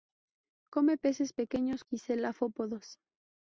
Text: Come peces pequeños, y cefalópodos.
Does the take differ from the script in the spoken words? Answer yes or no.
no